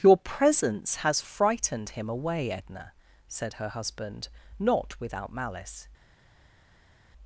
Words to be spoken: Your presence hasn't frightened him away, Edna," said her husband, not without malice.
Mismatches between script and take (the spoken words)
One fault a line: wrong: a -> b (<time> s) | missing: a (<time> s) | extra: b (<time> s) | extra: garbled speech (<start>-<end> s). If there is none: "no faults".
wrong: hasn't -> has (1.0 s)